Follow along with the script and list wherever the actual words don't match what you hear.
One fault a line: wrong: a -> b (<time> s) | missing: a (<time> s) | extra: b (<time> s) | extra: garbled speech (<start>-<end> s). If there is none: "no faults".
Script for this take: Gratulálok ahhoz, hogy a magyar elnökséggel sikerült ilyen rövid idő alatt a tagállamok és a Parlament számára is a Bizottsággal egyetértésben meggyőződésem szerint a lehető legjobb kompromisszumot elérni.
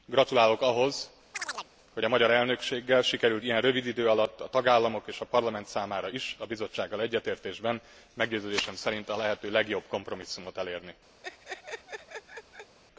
no faults